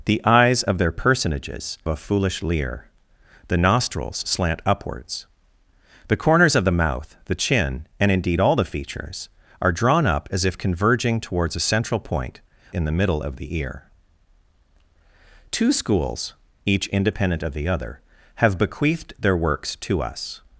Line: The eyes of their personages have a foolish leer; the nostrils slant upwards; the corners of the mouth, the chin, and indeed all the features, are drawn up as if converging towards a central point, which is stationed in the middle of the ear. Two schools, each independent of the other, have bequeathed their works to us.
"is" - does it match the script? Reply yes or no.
no